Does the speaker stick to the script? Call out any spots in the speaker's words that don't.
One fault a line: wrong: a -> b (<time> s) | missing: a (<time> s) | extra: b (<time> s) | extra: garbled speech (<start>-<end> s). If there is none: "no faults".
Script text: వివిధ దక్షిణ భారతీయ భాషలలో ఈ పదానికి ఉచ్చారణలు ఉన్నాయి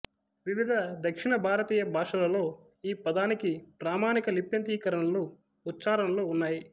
extra: ప్రామాణిక లిప్యంతరీకరణలు (3.8 s)